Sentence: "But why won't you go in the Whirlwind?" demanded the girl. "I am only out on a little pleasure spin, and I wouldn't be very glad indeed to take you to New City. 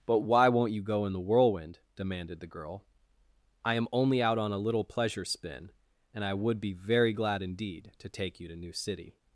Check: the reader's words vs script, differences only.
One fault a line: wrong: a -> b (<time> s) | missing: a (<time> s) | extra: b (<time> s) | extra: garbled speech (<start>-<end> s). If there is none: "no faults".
wrong: wouldn't -> would (6.3 s)